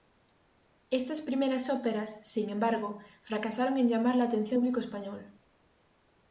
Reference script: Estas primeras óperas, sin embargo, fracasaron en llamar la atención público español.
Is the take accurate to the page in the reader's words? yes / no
yes